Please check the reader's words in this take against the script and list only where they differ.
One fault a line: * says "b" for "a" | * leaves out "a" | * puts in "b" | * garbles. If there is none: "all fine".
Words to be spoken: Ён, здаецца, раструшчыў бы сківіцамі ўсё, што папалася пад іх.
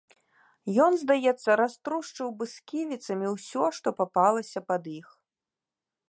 all fine